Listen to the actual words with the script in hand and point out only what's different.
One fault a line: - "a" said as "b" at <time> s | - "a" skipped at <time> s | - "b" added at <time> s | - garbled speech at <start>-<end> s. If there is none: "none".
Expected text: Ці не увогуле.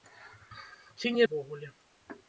none